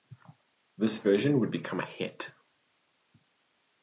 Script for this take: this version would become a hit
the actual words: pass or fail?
pass